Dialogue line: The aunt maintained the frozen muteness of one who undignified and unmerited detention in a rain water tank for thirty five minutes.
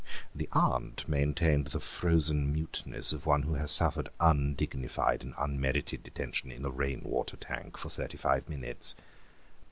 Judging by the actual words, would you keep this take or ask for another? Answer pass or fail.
fail